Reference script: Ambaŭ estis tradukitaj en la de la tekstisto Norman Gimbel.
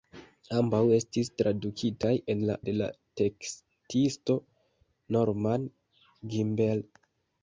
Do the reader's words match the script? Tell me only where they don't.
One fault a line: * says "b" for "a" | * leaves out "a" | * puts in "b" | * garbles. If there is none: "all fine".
all fine